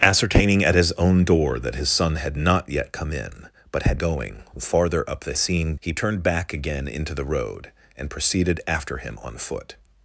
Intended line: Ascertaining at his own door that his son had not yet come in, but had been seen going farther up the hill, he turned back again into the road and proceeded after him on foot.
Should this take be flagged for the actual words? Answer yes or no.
yes